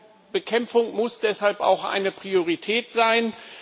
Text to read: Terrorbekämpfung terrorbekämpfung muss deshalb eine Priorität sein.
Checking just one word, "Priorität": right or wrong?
right